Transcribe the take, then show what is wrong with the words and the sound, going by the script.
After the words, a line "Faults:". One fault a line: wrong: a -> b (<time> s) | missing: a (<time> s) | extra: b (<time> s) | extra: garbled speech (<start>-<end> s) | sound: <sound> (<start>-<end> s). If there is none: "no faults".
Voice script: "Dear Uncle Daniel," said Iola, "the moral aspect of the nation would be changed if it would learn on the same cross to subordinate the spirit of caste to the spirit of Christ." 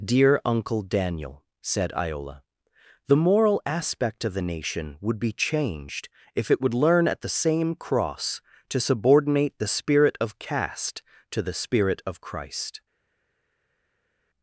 "Dear Uncle Daniel," said Iola, "the moral aspect of the nation would be changed if it would learn at the same cross to subordinate the spirit of caste to the spirit of Christ."
Faults:
wrong: on -> at (7.1 s)